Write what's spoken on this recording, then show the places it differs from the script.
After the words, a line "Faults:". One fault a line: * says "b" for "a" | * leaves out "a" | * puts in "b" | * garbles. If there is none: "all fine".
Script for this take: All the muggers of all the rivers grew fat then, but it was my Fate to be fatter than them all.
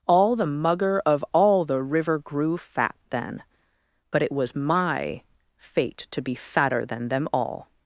All the mugger of all the river grew fat then, but it was my Fate to be fatter than them all.
Faults:
* says "mugger" for "muggers"
* says "river" for "rivers"